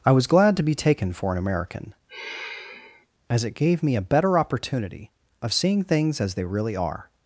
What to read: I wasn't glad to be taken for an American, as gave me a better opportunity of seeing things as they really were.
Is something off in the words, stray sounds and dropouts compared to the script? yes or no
yes